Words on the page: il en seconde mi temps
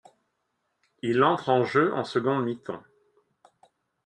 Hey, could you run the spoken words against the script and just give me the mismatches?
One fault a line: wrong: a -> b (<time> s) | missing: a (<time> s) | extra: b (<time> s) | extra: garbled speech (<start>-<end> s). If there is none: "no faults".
extra: entre en jeu (1.2 s)